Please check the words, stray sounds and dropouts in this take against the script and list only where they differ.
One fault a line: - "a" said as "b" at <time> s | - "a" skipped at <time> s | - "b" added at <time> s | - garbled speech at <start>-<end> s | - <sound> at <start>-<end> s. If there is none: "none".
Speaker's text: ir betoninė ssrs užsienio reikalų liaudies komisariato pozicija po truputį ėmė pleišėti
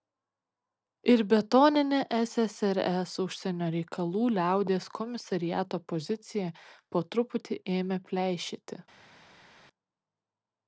none